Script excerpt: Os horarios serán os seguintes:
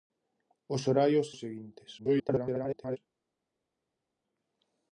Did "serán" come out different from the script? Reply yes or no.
yes